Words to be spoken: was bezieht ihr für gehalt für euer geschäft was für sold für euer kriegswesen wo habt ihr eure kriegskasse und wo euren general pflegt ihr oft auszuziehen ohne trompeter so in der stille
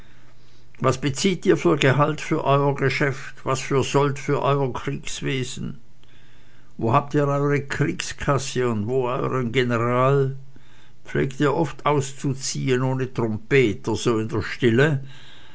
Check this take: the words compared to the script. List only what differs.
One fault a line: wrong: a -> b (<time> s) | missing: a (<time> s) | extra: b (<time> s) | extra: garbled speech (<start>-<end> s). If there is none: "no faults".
no faults